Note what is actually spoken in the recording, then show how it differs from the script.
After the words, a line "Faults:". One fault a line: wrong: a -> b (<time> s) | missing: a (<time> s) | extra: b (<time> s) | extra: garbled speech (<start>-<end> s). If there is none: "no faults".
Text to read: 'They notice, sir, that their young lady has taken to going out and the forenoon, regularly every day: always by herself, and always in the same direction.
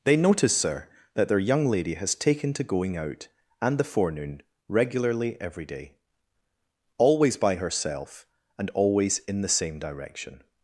'They notice, sir, that their young lady has taken to going out and the forenoon, regularly every day: always by herself, and always in the same direction.
Faults:
no faults